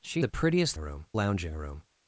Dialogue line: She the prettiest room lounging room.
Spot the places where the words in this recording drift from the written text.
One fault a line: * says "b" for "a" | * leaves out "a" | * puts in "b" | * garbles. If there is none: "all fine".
all fine